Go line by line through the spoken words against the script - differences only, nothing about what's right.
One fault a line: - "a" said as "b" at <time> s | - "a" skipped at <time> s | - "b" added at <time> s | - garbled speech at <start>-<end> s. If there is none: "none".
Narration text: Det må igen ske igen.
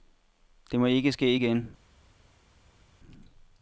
- "igen" said as "ikke" at 0.8 s